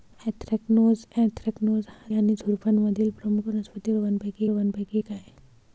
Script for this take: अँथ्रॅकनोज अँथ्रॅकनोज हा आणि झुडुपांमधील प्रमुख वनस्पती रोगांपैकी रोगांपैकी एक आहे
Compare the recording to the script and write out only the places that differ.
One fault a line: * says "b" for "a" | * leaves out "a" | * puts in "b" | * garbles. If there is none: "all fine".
all fine